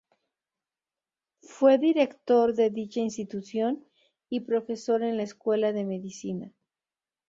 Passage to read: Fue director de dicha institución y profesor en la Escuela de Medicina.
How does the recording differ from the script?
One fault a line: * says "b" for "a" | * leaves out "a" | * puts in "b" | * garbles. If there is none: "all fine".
all fine